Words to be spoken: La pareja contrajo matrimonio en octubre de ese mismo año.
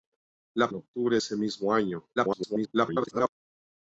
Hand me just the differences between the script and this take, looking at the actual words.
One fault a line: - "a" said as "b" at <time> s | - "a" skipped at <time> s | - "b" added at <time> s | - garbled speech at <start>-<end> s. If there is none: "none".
- "pareja contrajo matrimonio" skipped at 0.7 s
- "de" skipped at 1.2 s
- garbled speech at 2.2-3.3 s